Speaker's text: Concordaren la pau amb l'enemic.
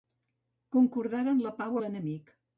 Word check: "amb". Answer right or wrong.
wrong